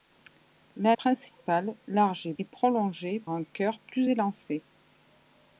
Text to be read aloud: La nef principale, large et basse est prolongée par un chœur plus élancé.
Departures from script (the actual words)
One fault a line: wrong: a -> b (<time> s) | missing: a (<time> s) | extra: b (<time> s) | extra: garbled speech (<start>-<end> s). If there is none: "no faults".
missing: nef (0.9 s)
missing: basse (2.3 s)
missing: par (3.2 s)